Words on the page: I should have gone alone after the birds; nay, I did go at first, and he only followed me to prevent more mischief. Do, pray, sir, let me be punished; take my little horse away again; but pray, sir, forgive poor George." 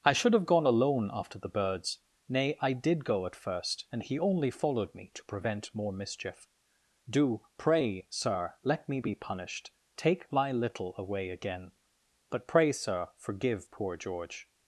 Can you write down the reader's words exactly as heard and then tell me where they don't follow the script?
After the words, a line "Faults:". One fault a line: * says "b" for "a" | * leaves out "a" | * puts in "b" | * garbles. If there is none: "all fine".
I should have gone alone after the birds; nay, I did go at first, and he only followed me to prevent more mischief. Do, pray, sir, let me be punished; take my little away again; but pray, sir, forgive poor George."
Faults:
* leaves out "horse"